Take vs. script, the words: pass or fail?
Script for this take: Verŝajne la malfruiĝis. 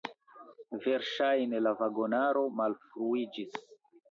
fail